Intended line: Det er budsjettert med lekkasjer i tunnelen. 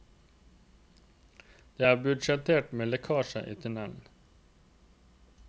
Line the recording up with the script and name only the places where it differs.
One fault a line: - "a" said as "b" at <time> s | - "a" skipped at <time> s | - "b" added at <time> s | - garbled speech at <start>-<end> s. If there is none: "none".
none